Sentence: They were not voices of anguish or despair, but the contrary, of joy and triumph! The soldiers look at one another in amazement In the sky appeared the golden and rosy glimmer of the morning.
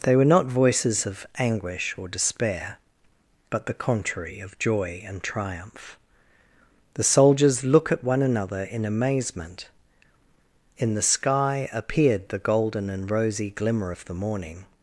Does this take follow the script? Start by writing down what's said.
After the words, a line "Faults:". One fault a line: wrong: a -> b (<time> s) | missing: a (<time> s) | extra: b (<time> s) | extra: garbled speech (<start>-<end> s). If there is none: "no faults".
They were not voices of anguish or despair, but the contrary, of joy and triumph! The soldiers look at one another in amazement In the sky appeared the golden and rosy glimmer of the morning.
Faults:
no faults